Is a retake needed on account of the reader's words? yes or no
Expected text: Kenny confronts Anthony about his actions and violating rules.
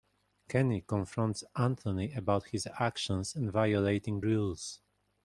no